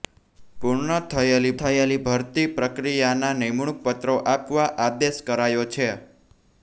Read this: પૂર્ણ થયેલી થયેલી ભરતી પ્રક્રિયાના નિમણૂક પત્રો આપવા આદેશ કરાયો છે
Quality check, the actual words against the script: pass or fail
pass